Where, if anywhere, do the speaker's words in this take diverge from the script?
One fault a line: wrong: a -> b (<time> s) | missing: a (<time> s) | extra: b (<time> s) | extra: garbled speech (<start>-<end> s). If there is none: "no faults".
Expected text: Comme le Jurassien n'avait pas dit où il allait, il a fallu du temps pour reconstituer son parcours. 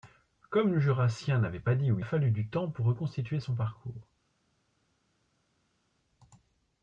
missing: il allait il (2.0 s)